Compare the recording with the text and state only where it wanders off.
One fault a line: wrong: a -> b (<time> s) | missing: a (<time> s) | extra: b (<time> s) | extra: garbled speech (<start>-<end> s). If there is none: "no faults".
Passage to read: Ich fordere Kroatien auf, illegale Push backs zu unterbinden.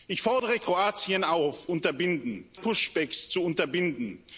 wrong: illegale -> unterbinden (1.7 s)